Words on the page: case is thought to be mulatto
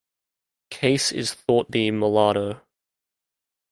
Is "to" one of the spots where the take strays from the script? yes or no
yes